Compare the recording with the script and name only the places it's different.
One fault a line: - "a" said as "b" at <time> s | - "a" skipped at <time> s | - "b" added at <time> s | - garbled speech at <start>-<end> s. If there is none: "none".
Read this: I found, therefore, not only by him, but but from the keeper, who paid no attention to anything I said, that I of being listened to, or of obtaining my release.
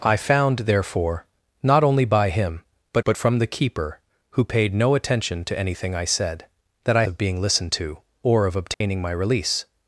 none